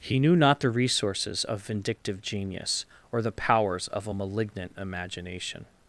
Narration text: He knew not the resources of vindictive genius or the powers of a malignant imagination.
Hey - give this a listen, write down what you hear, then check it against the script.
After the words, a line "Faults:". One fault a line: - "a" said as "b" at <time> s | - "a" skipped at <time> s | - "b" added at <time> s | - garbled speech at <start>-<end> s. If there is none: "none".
He knew not the resources of vindictive genius or the powers of a malignant imagination.
Faults:
none